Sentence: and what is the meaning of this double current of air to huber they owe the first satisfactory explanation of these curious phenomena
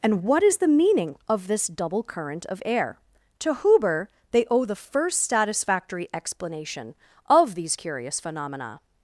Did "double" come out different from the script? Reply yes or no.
no